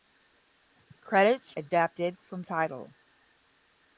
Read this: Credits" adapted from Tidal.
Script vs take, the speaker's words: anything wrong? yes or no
no